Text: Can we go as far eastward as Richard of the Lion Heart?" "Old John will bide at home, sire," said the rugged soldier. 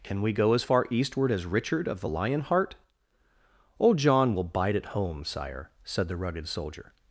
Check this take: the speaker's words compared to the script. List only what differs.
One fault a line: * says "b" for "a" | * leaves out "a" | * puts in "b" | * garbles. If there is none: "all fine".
all fine